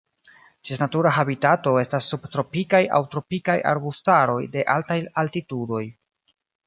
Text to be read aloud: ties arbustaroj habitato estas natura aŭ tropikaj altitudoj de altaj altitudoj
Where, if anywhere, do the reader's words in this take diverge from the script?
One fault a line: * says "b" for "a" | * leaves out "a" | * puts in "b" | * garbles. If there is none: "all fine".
* says "natura" for "arbustaroj"
* says "subtropikaj" for "natura"
* says "arbustaroj" for "altitudoj"